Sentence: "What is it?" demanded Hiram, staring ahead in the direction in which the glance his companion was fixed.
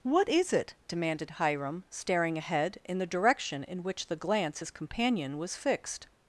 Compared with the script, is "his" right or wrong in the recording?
right